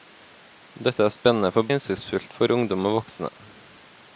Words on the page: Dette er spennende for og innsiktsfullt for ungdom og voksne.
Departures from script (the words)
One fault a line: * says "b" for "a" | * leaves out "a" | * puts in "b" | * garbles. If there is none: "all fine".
all fine